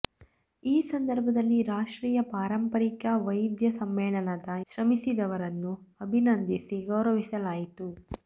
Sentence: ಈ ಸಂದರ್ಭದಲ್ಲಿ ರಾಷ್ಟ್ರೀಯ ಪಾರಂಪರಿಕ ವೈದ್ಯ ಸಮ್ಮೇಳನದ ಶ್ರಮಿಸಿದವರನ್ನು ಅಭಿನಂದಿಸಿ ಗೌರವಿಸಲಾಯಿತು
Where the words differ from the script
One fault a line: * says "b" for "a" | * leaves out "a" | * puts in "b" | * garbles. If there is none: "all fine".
all fine